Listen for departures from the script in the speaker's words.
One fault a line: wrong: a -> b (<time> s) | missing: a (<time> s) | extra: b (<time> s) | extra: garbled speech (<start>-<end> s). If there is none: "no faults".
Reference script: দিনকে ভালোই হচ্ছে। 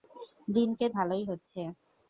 no faults